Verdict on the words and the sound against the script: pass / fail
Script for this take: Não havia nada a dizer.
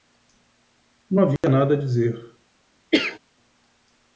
fail